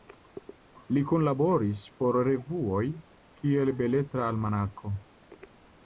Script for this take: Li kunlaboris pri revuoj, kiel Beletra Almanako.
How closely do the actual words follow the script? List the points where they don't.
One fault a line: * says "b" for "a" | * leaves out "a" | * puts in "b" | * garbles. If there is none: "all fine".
* says "por" for "pri"